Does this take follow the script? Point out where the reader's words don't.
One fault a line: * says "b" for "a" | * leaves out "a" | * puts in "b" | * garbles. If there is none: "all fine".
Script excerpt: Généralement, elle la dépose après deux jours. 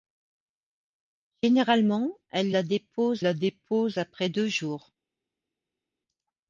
* puts in "la dépose"